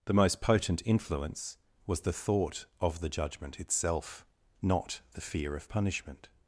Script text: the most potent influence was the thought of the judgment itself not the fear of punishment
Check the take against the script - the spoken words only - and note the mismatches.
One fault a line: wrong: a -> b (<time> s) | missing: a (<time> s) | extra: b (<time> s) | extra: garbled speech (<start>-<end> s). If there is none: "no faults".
no faults